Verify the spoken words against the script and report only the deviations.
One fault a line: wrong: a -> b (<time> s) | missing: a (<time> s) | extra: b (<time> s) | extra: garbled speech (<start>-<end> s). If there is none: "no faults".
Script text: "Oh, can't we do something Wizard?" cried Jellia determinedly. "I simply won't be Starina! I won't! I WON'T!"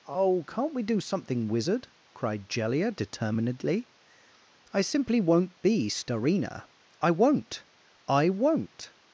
no faults